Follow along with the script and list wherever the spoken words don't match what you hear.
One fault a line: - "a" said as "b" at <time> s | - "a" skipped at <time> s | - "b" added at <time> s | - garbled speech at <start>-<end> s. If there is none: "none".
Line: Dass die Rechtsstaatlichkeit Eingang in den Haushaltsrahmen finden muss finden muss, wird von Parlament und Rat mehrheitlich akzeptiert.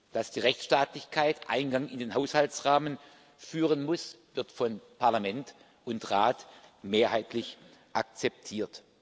- "finden muss" skipped at 4.2 s